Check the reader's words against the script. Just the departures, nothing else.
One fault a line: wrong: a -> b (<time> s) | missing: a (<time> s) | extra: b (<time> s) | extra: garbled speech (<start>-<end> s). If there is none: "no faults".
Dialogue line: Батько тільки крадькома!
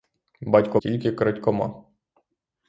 no faults